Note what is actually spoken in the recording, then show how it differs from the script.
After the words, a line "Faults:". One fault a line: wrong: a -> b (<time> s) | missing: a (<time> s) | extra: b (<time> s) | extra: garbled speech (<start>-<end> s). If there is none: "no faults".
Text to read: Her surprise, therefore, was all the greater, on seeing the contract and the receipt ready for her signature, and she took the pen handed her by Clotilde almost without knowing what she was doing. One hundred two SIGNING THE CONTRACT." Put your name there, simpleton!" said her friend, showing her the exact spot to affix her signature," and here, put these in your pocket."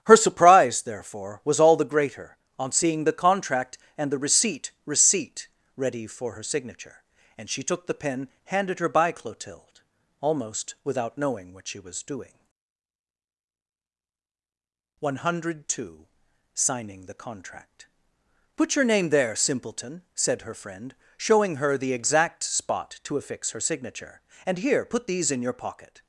Her surprise, therefore, was all the greater, on seeing the contract and the receipt receipt ready for her signature, and she took the pen handed her by Clotilde almost without knowing what she was doing. One hundred two SIGNING THE CONTRACT." Put your name there, simpleton!" said her friend, showing her the exact spot to affix her signature," and here, put these in your pocket."
Faults:
extra: receipt (4.8 s)